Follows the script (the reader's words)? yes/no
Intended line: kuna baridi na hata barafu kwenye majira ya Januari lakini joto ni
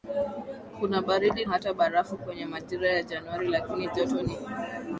no